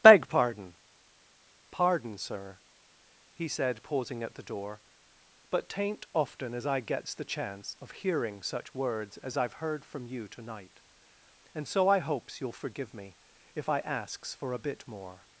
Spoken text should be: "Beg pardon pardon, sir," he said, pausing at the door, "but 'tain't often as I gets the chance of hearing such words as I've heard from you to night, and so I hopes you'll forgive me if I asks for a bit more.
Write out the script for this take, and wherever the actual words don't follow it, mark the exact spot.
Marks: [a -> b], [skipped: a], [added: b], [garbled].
"Beg pardon pardon, sir," he said, pausing at the door, "but 'tain't often as I gets the chance of hearing such words as I've heard from you to night, and so I hopes you'll forgive me if I asks for a bit more.